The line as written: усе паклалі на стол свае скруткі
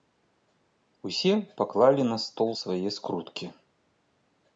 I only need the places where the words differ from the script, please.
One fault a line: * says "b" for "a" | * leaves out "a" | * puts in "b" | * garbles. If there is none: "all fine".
all fine